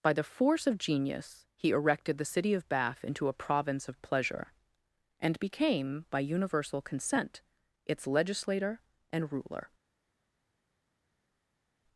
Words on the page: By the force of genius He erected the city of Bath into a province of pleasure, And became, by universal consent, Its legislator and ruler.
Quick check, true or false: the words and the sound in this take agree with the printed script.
true